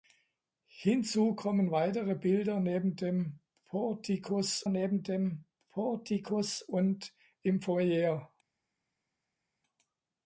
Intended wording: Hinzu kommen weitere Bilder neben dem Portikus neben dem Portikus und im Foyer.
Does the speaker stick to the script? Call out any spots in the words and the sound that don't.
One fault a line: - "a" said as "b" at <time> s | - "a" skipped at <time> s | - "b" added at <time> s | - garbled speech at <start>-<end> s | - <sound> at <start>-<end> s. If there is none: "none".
none